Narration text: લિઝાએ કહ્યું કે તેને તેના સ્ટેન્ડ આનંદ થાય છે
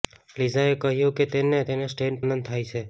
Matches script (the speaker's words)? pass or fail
pass